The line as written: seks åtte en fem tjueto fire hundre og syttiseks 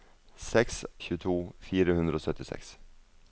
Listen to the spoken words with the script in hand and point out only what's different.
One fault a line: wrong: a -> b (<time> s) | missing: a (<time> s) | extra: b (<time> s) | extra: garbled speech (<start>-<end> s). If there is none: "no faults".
missing: åtte en fem (0.8 s)